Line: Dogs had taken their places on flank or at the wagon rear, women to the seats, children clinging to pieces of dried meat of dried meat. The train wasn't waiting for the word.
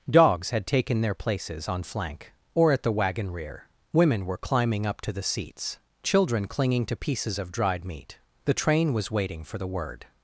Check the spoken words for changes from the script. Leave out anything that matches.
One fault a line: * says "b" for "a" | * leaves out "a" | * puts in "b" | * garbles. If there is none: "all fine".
* puts in "were climbing up"
* leaves out "of dried meat"
* says "was" for "wasn't"